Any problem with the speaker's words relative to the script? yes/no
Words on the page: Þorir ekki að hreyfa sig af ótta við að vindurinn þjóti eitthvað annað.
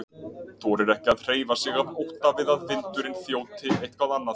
no